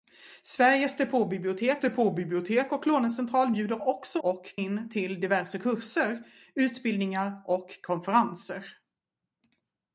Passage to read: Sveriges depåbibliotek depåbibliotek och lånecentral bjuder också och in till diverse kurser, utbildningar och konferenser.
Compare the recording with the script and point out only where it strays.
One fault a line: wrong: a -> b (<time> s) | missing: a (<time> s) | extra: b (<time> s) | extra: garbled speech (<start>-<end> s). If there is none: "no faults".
no faults